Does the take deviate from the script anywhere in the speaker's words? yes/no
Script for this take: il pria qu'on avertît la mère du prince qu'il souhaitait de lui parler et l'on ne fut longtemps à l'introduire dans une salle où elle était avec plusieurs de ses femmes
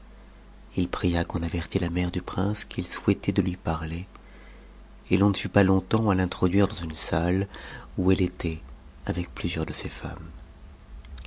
yes